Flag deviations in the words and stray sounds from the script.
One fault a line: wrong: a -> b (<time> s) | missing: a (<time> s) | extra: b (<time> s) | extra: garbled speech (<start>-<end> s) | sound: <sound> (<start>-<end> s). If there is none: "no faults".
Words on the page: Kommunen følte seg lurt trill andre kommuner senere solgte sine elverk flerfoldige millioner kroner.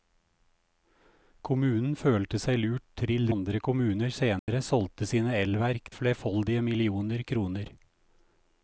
sound: dropout (4.4-4.5 s)